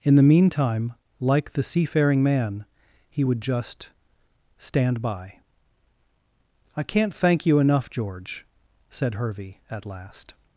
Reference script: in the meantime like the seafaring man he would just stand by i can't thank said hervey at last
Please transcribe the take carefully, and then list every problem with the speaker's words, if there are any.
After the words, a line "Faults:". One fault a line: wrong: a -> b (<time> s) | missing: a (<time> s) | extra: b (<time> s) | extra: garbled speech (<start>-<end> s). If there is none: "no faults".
in the meantime like the seafaring man he would just stand by i can't thank you enough george said hervey at last
Faults:
extra: you enough george (7.4 s)